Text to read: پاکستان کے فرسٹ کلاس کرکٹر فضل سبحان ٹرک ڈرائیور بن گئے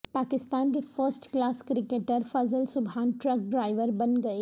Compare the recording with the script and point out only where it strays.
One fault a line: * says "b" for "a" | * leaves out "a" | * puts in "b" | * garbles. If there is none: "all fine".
all fine